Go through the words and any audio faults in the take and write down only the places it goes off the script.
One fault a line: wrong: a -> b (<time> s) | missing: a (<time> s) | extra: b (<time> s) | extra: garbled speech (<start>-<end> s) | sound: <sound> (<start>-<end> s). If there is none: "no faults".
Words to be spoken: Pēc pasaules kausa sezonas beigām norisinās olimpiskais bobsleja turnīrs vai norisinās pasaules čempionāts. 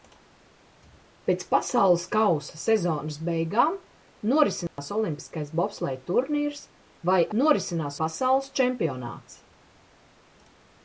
sound: dropout (4.7-4.8 s)